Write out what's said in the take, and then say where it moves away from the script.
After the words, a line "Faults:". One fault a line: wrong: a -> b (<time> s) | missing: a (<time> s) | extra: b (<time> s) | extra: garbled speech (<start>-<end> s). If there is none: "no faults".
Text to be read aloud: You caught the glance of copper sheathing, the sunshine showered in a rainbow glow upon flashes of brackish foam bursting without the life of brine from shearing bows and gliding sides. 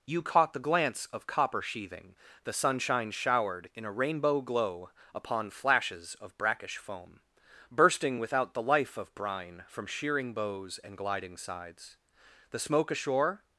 You caught the glance of copper sheathing, the sunshine showered in a rainbow glow upon flashes of brackish foam bursting without the life of brine from shearing bows and gliding sides. The smoke ashore
Faults:
extra: The smoke ashore (12.5 s)